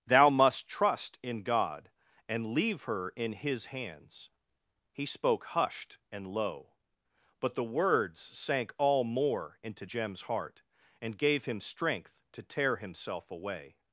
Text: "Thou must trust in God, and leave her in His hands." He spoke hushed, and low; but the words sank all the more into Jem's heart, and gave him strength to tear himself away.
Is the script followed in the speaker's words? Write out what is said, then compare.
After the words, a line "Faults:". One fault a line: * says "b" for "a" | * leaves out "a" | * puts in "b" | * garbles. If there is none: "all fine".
"Thou must trust in God, and leave her in His hands." He spoke hushed, and low; but the words sank all more into Jem's heart, and gave him strength to tear himself away.
Faults:
* leaves out "the"